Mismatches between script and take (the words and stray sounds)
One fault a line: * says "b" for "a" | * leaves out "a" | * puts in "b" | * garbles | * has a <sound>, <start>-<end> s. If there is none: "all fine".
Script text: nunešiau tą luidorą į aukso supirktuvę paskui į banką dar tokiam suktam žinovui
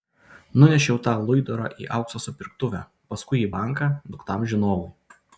* leaves out "dar tokiam"